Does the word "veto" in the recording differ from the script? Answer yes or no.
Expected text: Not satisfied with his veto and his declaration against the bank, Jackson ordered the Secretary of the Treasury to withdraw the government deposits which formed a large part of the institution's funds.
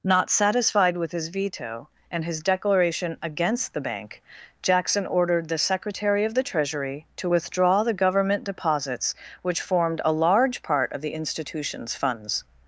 no